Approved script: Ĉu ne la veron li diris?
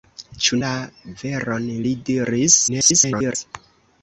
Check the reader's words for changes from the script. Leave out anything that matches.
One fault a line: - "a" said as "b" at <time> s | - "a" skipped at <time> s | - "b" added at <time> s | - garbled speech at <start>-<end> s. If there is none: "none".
- "ne" skipped at 0.6 s
- garbled speech at 2.7-3.4 s